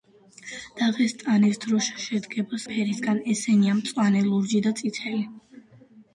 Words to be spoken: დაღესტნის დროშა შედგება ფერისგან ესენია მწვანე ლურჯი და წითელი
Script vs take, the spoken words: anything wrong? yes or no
no